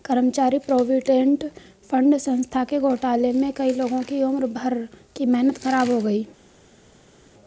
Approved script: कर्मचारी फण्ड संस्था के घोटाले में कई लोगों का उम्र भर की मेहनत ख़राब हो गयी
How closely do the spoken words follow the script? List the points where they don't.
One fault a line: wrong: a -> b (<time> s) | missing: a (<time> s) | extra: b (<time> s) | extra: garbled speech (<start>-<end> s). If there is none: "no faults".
extra: प्रोविडेंट (0.6 s)
wrong: का -> की (4.0 s)